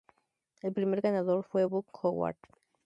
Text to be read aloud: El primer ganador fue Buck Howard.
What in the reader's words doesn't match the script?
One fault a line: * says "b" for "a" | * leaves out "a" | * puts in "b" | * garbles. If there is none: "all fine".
all fine